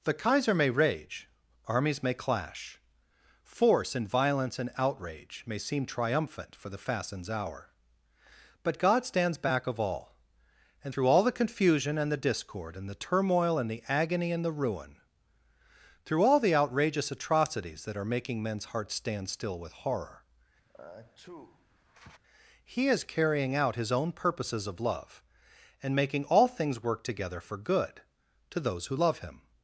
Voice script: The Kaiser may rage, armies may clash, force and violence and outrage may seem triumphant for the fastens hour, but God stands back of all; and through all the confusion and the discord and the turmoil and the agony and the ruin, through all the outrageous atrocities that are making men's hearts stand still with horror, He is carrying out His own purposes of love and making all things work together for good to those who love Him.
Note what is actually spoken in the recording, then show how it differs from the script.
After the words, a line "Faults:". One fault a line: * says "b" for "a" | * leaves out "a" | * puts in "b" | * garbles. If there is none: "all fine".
The Kaiser may rage, armies may clash, force and violence and outrage may seem triumphant for the fastens hour, but God stands back of all; and through all the confusion and the discord and the turmoil and the agony and the ruin, through all the outrageous atrocities that are making men's hearts stand still with horror, He is carrying out His own purposes of love and making all things work together for good to those who love Him.
Faults:
all fine